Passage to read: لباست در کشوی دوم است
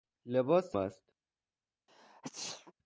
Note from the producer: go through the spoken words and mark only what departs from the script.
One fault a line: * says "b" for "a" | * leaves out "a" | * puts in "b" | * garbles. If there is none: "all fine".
* leaves out "در کشوی دوم"